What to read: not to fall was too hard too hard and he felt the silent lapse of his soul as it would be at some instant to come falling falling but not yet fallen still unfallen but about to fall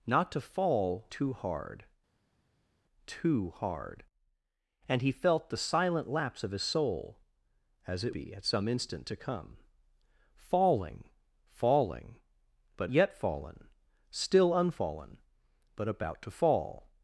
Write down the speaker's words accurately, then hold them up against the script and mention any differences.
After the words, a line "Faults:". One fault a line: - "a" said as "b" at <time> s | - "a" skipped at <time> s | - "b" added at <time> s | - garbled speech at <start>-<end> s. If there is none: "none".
not to fall too hard too hard and he felt the silent lapse of his soul as it be at some instant to come falling falling but yet fallen still unfallen but about to fall
Faults:
- "was" skipped at 1.1 s
- "would" skipped at 8.2 s
- "not" skipped at 12.9 s